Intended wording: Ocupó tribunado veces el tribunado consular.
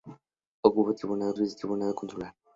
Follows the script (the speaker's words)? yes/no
yes